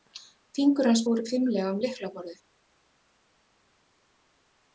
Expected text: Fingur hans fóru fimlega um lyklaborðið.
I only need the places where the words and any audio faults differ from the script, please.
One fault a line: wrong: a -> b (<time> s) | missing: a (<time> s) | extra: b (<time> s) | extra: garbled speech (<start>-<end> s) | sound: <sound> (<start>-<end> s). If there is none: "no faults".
no faults